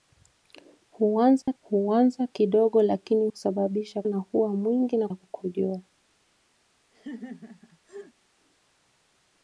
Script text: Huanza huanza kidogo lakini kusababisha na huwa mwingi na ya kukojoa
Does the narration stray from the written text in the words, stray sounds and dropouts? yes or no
yes